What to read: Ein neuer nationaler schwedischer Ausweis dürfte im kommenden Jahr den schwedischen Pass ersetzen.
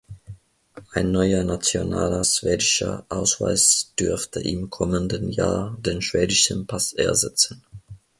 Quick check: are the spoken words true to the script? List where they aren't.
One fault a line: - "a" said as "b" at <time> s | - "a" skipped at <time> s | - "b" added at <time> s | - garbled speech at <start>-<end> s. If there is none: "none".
none